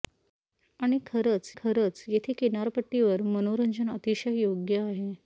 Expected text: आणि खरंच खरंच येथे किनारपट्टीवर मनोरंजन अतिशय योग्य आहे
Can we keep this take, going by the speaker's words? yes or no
yes